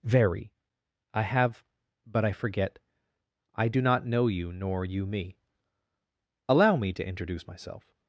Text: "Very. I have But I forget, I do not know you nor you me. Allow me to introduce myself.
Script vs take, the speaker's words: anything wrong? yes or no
no